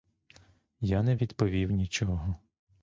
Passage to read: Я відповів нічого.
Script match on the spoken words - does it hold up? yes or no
no